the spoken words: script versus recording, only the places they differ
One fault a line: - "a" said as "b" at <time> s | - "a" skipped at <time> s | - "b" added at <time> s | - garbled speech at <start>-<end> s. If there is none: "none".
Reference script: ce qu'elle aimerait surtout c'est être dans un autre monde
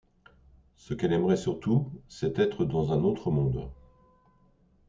none